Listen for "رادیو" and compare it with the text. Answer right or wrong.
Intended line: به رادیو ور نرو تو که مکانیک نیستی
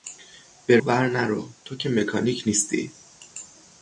wrong